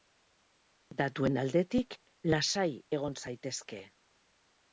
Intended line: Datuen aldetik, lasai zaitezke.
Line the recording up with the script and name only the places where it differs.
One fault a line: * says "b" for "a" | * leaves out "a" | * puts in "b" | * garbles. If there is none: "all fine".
* puts in "egon"